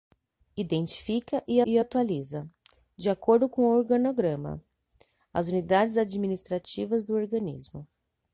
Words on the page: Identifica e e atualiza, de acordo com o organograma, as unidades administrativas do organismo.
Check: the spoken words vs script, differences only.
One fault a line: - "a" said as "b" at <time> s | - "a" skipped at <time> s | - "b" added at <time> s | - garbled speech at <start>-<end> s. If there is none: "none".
none